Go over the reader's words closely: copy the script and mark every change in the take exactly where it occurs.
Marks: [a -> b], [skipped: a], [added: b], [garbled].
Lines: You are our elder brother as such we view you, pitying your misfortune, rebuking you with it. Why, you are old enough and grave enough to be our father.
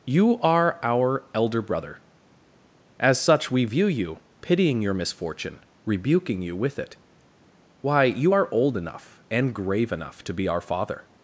You are our elder brother as such we view you, pitying your misfortune, rebuking you with it. Why, you are old enough and grave enough to be our father.